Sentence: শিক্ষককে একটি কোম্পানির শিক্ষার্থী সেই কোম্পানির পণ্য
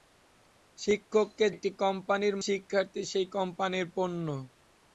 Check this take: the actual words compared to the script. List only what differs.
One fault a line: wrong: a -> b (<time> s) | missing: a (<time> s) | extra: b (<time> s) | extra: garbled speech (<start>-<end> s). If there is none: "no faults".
no faults